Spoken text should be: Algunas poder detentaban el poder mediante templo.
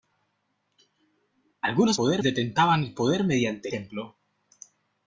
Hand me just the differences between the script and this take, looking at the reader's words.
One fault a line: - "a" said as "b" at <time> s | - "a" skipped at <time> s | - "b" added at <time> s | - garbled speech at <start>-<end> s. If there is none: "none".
none